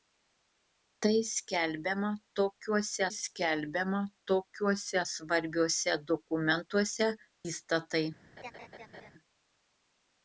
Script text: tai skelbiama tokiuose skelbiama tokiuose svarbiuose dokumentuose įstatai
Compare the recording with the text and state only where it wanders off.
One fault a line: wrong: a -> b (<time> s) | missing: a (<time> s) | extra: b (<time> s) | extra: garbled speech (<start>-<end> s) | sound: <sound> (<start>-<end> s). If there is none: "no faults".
sound: laugh (8.4-9.1 s)